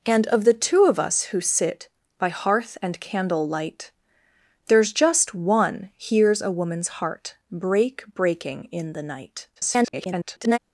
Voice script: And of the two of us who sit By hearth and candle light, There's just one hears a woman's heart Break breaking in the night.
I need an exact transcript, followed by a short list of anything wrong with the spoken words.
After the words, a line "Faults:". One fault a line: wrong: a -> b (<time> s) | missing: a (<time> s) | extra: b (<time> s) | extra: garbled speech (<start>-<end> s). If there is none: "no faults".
And of the two of us who sit By hearth and candle light, There's just one hears a woman's heart Break breaking in the night. [garbled]
Faults:
extra: garbled speech (9.6-10.6 s)